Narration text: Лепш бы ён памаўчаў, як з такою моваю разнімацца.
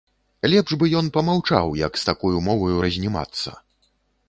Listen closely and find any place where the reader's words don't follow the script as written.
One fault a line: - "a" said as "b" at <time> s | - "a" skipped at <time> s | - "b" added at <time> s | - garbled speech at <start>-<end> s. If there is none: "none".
none